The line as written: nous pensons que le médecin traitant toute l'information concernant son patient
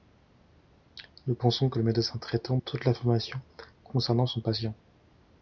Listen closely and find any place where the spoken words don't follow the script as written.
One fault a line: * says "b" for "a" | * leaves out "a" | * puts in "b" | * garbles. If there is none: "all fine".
all fine